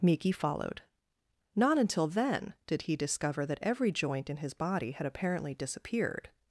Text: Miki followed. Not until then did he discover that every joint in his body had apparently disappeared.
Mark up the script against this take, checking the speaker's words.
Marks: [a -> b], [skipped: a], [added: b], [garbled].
Miki followed. Not until then did he discover that every joint in his body had apparently disappeared.